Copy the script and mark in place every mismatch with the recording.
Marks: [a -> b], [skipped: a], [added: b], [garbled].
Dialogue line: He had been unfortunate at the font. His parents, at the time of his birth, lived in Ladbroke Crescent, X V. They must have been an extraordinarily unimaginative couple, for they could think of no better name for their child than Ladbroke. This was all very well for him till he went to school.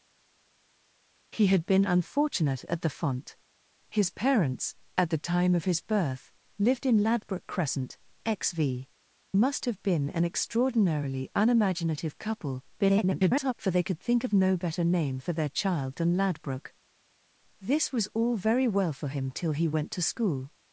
He had been unfortunate at the font. His parents, at the time of his birth, lived in Ladbroke Crescent, X V. [skipped: They] must have been an extraordinarily unimaginative couple, [garbled] for they could think of no better name for their child than Ladbroke. This was all very well for him till he went to school.